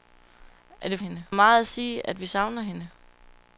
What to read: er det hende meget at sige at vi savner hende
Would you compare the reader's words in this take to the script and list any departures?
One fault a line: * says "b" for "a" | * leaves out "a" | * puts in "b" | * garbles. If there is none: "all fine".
all fine